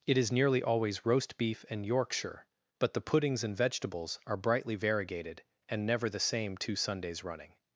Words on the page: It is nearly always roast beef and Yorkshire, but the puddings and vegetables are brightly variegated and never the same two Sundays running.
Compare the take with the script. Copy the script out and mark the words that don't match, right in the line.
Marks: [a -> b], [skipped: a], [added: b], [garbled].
It is nearly always roast beef and Yorkshire, but the puddings and vegetables are brightly variegated and never the same two Sundays running.